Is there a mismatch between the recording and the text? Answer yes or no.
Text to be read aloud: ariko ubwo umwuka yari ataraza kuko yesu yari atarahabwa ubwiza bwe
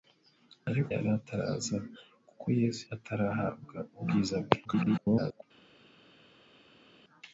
yes